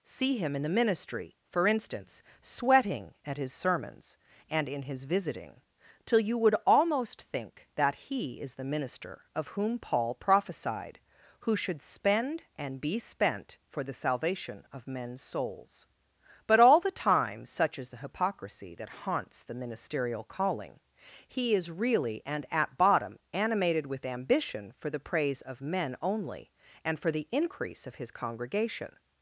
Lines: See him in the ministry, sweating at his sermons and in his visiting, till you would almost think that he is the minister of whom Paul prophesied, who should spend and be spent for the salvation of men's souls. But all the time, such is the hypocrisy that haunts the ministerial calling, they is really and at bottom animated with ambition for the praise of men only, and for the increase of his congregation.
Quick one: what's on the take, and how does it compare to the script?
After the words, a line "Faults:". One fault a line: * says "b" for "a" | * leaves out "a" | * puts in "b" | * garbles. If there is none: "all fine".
See him in the ministry, for instance, sweating at his sermons and in his visiting, till you would almost think that he is the minister of whom Paul prophesied, who should spend and be spent for the salvation of men's souls. But all the time, such is the hypocrisy that haunts the ministerial calling, he is really and at bottom animated with ambition for the praise of men only, and for the increase of his congregation.
Faults:
* puts in "for instance"
* says "he" for "they"